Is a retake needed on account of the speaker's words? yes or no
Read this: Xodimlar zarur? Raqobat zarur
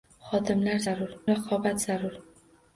no